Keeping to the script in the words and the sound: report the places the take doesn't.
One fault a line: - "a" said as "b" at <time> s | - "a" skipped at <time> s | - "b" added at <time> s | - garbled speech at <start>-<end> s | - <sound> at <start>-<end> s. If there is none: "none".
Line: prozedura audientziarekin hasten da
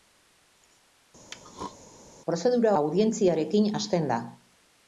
- throat clearing at 1.3-1.8 s